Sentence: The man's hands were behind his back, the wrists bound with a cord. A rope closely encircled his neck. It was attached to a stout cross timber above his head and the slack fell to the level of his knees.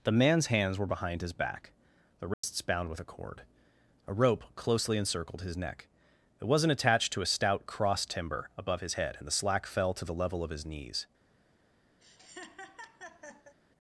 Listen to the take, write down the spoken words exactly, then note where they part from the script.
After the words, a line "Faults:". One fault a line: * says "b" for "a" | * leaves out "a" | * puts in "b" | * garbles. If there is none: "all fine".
The man's hands were behind his back, the wrists bound with a cord. A rope closely encircled his neck. It wasn't attached to a stout cross timber above his head and the slack fell to the level of his knees.
Faults:
* says "wasn't" for "was"